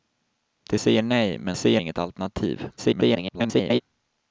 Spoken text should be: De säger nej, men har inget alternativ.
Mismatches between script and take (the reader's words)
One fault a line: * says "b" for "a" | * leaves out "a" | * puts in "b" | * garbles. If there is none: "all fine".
* says "säger" for "har"
* garbles